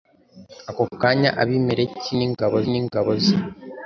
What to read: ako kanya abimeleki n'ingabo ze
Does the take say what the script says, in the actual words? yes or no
no